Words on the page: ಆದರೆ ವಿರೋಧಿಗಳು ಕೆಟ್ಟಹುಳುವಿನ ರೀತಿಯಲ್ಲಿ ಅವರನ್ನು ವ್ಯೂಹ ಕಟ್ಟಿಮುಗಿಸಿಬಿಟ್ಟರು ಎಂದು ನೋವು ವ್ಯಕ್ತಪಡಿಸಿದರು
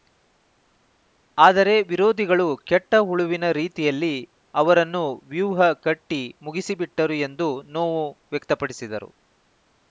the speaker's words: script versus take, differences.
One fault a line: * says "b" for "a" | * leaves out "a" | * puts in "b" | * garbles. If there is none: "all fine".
all fine